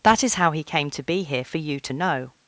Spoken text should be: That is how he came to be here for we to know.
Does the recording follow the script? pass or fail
fail